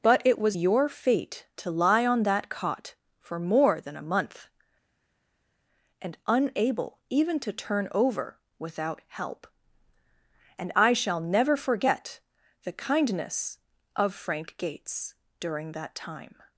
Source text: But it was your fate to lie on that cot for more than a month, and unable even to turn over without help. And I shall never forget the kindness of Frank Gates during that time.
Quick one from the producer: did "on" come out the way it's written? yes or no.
yes